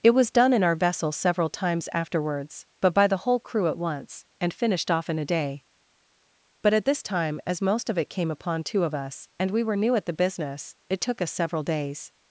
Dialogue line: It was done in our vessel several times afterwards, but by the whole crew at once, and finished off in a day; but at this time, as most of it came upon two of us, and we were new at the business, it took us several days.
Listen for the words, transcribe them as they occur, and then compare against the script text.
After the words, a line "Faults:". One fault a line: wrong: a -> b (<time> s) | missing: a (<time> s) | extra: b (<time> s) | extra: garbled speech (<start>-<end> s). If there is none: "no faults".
It was done in our vessel several times afterwards, but by the whole crew at once, and finished off in a day; but at this time, as most of it came upon two of us, and we were new at the business, it took us several days.
Faults:
no faults